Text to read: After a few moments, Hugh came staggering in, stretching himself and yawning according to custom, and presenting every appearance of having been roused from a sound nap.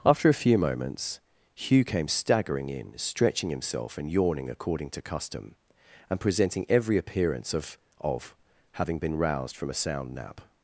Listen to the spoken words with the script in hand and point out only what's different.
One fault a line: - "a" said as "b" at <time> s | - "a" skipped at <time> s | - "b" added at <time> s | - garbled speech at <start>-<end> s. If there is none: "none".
- "of" added at 8.0 s